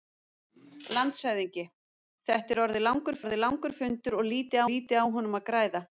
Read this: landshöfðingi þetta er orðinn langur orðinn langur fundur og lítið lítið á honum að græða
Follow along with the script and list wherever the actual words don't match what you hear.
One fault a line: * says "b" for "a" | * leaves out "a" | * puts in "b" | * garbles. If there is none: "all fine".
all fine